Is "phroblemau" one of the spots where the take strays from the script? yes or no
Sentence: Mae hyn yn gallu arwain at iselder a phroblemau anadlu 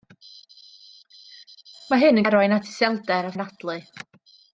yes